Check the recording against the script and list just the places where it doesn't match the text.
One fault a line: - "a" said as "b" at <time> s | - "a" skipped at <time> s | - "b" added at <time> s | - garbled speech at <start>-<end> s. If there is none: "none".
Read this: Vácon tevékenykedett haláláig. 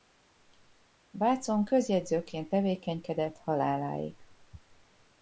- "közjegyzőként" added at 1.6 s